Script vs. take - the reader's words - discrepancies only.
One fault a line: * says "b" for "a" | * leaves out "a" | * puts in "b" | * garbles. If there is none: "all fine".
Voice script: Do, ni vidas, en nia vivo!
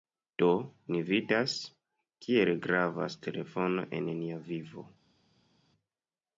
* puts in "kiel gravas telefono"